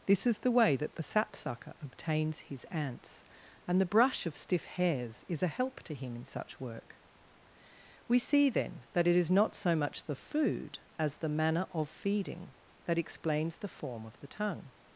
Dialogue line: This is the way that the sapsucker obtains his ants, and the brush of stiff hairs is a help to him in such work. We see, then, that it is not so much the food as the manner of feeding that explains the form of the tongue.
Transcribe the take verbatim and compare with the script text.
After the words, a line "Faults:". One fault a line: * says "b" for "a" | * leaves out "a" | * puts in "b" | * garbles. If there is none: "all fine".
This is the way that the sapsucker obtains his ants, and the brush of stiff hairs is a help to him in such work. We see, then, that it is not so much the food as the manner of feeding that explains the form of the tongue.
Faults:
all fine